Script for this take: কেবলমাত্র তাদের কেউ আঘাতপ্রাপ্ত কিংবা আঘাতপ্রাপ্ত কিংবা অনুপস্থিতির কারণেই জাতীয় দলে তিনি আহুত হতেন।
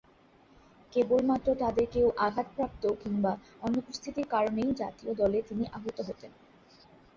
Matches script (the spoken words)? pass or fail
fail